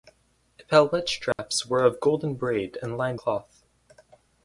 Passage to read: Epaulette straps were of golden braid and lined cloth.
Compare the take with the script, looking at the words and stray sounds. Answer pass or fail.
fail